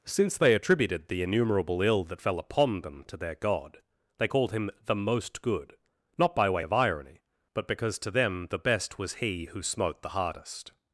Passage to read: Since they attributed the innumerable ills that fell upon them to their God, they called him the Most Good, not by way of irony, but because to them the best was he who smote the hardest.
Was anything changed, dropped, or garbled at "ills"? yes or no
yes